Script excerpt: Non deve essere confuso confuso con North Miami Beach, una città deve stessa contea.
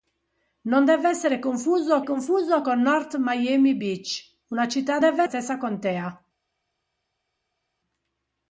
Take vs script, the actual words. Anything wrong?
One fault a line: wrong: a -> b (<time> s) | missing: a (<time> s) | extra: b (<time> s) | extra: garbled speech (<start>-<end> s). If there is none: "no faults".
no faults